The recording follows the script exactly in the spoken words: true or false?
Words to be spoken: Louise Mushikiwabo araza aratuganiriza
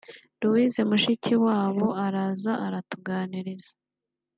true